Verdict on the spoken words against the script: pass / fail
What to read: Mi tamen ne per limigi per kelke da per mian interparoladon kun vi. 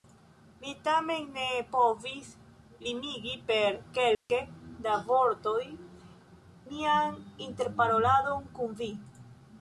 fail